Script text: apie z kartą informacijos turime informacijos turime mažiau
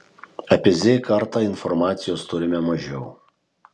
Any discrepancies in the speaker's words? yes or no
yes